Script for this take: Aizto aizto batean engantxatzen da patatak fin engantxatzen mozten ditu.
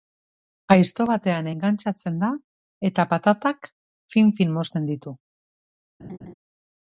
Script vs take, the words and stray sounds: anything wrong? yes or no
yes